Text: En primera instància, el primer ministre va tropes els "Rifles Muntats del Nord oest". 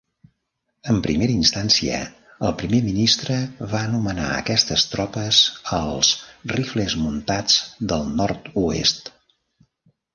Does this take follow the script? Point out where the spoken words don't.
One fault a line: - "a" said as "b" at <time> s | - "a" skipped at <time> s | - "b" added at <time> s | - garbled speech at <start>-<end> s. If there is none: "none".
- "anomenar aquestes" added at 3.9 s